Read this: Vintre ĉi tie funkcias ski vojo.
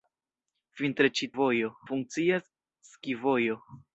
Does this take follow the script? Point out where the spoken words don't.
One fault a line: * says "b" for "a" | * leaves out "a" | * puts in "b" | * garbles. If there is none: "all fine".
* says "vojo" for "tie"